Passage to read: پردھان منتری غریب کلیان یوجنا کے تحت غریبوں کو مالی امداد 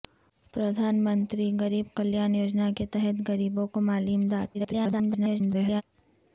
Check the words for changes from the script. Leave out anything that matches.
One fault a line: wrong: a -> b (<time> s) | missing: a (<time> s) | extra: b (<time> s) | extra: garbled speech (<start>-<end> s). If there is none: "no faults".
extra: garbled speech (4.5-5.8 s)